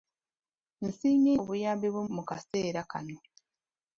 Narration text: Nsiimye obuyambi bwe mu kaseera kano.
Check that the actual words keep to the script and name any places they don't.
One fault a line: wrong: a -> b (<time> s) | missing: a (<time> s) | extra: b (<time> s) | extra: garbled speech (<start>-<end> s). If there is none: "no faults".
no faults